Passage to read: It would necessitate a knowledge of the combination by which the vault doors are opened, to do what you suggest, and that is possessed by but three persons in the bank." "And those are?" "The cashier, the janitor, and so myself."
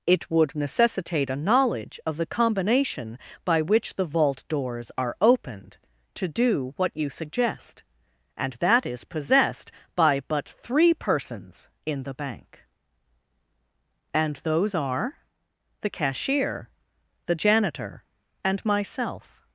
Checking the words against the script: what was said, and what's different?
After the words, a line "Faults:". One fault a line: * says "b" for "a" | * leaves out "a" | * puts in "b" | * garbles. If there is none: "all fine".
It would necessitate a knowledge of the combination by which the vault doors are opened, to do what you suggest, and that is possessed by but three persons in the bank." "And those are?" "The cashier, the janitor, and myself."
Faults:
* leaves out "so"